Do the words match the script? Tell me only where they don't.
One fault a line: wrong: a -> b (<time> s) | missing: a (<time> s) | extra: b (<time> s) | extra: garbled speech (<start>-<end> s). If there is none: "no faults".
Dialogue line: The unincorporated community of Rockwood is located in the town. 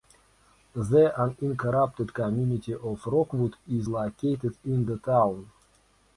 no faults